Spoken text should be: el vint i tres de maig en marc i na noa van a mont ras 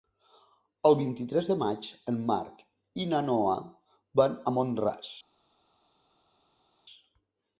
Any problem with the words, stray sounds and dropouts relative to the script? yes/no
no